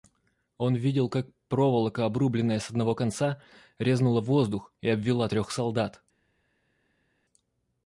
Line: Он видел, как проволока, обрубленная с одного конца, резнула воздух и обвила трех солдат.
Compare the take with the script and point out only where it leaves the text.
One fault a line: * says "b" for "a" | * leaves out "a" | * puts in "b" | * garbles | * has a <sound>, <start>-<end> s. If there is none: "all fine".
all fine